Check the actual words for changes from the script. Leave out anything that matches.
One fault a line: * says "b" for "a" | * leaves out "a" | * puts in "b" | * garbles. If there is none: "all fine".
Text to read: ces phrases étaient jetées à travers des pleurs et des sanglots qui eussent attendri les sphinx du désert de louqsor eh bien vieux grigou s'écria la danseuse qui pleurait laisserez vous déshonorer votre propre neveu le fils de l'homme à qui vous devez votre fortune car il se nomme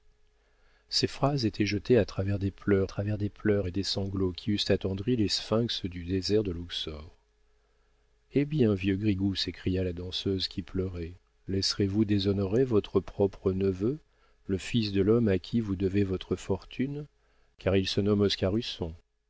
* puts in "travers des pleurs"